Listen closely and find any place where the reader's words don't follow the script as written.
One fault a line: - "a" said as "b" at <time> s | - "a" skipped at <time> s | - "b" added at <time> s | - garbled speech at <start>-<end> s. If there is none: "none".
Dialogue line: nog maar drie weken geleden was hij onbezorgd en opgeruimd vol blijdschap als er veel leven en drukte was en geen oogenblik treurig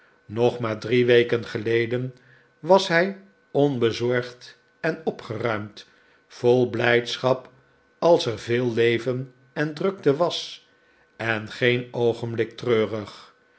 none